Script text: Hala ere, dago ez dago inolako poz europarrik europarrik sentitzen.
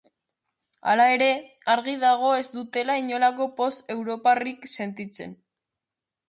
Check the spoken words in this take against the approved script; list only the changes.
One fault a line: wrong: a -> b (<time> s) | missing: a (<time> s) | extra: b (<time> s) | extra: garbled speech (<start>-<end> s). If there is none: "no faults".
extra: argi (1.7 s)
wrong: dago -> dutela (2.5 s)
missing: europarrik (4.7 s)